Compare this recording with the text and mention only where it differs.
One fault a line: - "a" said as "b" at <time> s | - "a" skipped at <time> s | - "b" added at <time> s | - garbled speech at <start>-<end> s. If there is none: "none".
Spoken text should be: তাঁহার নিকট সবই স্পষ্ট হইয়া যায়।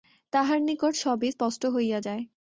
none